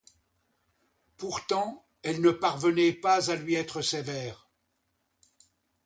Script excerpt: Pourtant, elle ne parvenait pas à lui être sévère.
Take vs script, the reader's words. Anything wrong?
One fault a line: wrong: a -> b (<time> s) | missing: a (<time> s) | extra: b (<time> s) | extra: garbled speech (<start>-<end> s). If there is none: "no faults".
no faults